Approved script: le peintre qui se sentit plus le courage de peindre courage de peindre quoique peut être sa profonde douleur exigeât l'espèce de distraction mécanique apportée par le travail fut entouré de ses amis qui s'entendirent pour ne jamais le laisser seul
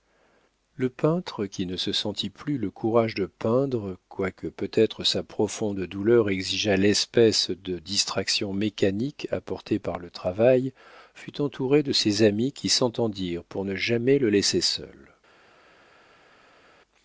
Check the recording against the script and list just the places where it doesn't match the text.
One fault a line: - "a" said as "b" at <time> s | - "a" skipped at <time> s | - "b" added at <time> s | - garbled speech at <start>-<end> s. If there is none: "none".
- "ne" added at 1.7 s
- "courage de peindre" skipped at 4.0 s